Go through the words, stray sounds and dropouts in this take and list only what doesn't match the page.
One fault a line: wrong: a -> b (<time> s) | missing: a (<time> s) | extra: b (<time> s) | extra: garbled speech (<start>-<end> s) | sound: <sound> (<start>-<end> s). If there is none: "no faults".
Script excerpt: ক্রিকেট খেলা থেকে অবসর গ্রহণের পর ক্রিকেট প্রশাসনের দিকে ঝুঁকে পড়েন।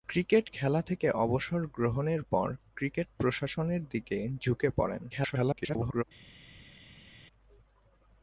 extra: garbled speech (5.1-6.0 s)